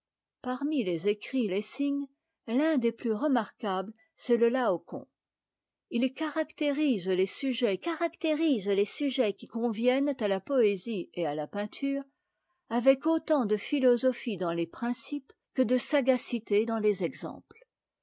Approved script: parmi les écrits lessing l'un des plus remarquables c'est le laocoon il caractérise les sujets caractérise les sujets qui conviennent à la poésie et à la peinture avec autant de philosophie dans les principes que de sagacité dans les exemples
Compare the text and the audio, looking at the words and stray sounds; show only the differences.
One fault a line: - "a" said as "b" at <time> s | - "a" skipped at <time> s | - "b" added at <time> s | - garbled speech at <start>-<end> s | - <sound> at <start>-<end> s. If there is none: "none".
none